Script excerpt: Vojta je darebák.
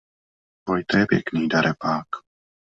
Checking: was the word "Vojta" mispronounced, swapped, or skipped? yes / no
no